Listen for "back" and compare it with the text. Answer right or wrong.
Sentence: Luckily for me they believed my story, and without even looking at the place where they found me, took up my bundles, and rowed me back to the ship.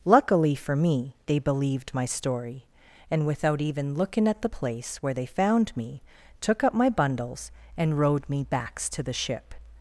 wrong